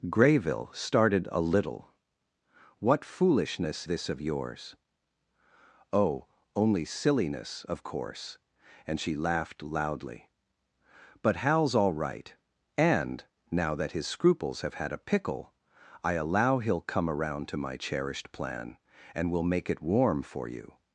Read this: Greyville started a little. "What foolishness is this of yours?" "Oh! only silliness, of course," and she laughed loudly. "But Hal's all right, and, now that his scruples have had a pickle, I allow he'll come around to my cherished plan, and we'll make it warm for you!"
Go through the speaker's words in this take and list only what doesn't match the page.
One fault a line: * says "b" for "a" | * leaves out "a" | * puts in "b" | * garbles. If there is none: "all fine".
* leaves out "is"